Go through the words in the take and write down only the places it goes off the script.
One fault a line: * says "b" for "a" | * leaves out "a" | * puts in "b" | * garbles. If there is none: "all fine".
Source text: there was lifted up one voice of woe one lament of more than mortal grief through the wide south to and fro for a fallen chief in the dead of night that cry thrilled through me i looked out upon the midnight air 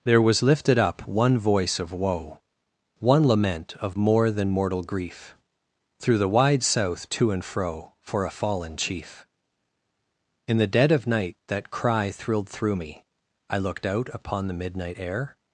all fine